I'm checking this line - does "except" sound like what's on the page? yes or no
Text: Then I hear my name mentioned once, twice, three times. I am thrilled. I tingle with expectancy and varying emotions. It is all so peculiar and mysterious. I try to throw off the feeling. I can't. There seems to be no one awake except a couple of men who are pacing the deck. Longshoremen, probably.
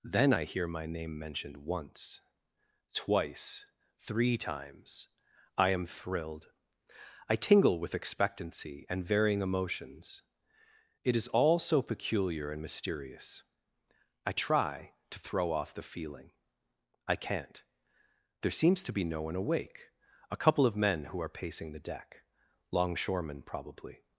no